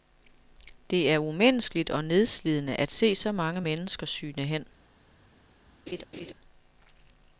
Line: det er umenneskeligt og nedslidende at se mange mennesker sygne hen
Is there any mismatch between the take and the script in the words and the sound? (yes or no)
yes